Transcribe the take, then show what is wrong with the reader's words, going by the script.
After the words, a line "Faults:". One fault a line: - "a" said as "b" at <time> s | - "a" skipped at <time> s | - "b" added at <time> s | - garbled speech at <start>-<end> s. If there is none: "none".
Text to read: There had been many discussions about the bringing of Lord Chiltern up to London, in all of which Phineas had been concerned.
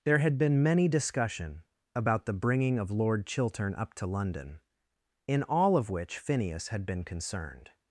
There had been many discussion about the bringing of Lord Chiltern up to London, in all of which Phineas had been concerned.
Faults:
- "discussions" said as "discussion" at 0.9 s